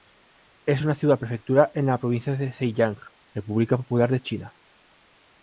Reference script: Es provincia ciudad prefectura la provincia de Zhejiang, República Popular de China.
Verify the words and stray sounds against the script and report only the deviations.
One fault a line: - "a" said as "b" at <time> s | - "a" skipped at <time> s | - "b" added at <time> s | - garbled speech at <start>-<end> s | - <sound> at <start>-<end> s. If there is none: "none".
- "provincia" said as "una" at 0.8 s
- "en" added at 1.7 s